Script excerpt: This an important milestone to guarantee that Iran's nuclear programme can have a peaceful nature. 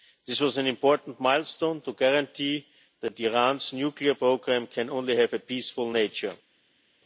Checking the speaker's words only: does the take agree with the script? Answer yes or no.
no